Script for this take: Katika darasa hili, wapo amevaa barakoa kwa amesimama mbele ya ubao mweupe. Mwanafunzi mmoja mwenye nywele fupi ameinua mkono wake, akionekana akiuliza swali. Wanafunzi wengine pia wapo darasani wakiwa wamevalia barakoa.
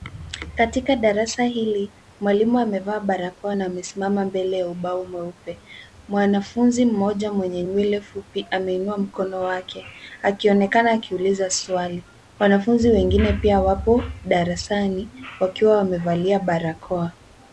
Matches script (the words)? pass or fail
fail